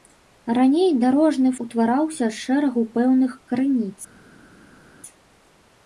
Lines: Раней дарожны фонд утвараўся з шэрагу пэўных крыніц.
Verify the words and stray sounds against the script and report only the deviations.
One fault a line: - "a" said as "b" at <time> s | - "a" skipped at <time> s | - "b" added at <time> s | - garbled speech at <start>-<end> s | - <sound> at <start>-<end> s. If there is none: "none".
- "фонд" skipped at 1.5 s